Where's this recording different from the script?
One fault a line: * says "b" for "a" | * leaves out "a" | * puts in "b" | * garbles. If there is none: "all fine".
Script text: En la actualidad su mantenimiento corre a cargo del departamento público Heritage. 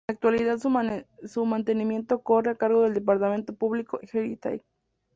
all fine